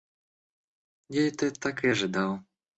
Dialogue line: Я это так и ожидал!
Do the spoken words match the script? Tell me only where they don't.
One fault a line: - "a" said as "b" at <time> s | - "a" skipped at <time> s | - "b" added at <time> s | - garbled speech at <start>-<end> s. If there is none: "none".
none